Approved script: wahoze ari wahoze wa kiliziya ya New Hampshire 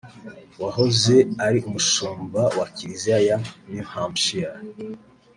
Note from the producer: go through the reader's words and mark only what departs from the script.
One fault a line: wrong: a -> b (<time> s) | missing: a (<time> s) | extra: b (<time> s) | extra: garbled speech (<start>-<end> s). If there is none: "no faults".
wrong: wahoze -> umushumba (1.7 s)